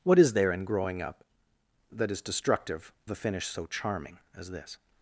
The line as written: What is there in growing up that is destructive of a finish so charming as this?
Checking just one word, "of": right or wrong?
wrong